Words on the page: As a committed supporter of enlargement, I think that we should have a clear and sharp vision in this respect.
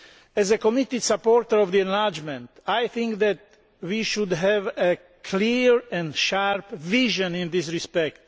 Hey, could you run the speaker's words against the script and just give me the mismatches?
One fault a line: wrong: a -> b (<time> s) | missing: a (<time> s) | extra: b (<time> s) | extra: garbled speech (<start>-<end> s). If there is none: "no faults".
no faults